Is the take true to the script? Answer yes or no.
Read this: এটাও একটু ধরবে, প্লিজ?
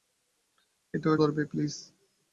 no